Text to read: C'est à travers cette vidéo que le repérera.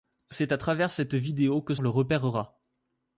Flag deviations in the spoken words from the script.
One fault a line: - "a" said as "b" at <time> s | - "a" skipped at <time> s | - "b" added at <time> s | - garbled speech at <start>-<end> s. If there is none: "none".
none